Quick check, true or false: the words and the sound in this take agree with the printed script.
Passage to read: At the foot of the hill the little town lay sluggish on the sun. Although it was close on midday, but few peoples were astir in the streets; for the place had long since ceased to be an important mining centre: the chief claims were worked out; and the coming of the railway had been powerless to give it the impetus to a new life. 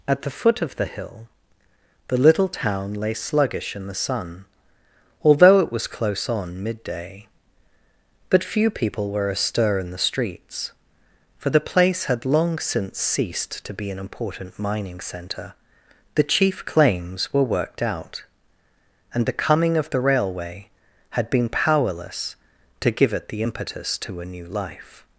false